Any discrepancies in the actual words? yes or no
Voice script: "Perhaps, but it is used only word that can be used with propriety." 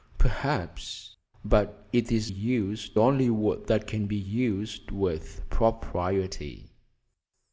no